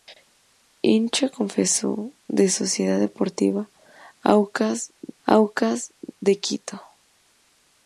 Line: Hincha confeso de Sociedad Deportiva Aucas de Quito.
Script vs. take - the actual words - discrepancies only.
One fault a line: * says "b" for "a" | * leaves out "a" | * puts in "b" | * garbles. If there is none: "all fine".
* puts in "Aucas"